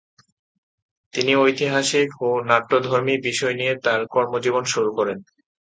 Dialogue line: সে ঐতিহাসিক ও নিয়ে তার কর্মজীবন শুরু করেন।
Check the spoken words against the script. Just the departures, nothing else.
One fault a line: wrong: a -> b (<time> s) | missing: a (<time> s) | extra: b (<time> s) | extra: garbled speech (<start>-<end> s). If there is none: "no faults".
wrong: সে -> তিনি (1.1 s)
extra: নাট্যধর্মী বিষয় (2.5 s)